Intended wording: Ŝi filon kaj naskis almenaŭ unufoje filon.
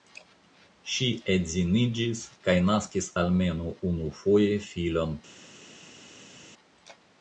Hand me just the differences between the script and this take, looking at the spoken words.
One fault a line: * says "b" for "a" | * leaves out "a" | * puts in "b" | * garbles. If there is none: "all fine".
* says "edziniĝis" for "filon"